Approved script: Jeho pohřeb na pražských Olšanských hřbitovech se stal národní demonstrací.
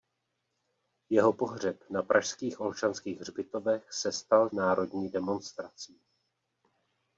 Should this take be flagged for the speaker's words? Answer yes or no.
no